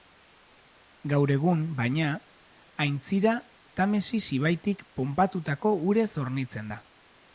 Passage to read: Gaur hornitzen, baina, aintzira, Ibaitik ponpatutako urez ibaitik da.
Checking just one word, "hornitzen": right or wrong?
wrong